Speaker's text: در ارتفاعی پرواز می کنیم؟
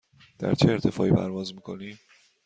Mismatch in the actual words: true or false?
true